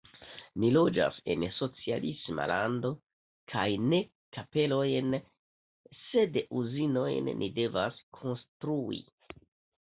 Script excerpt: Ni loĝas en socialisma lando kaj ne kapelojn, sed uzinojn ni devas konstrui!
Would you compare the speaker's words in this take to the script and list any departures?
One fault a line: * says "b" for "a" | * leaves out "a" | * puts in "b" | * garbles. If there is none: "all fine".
all fine